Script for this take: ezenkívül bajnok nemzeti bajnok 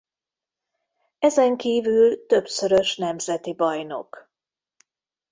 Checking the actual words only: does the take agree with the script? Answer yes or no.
no